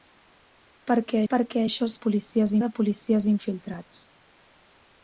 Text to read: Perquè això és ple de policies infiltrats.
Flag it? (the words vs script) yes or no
yes